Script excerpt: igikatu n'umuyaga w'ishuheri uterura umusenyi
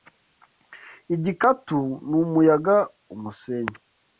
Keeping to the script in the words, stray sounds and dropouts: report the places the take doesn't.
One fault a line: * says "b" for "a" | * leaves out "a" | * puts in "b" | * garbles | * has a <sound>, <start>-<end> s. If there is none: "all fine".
* leaves out "w'ishuheri uterura"